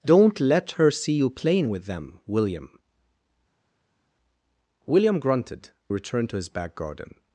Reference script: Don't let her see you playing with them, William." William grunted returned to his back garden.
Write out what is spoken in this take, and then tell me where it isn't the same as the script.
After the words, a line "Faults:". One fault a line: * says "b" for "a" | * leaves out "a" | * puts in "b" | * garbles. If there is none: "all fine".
Don't let her see you playing with them, William." William grunted returned to his back garden.
Faults:
all fine